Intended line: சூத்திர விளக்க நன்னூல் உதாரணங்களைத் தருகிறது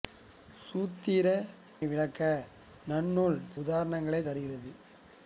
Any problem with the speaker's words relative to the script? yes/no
no